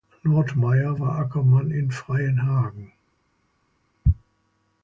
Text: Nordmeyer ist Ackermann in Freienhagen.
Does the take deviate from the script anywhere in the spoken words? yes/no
yes